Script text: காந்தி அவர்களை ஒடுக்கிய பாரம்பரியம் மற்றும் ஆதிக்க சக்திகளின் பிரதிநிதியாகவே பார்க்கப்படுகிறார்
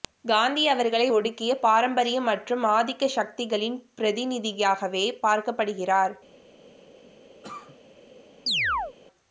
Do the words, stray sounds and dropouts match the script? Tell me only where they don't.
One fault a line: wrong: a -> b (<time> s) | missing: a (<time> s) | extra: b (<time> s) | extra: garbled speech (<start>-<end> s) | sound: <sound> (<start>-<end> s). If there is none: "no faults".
sound: cough (7.4-7.8 s)
sound: chirp (8.5-9.0 s)